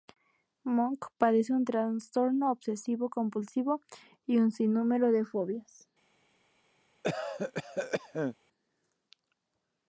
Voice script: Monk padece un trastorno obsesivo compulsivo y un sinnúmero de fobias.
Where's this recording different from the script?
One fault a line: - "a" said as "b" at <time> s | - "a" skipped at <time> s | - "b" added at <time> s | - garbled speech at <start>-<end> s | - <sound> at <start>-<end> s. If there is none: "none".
- cough at 7.0-8.4 s